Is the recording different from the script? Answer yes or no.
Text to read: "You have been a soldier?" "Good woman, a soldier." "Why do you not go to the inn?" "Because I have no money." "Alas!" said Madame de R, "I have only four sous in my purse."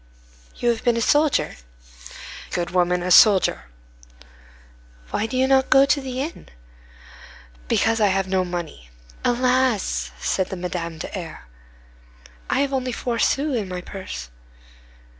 no